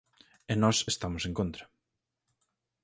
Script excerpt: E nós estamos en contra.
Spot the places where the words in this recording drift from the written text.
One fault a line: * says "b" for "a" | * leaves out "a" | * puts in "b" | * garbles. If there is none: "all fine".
all fine